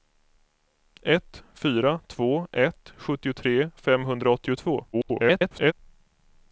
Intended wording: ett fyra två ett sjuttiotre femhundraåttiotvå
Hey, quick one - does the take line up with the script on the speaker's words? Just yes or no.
no